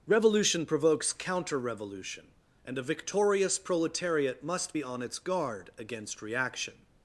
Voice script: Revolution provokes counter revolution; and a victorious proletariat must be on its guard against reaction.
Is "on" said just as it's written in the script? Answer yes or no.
yes